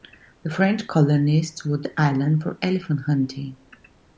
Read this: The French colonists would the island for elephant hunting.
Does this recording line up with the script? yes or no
yes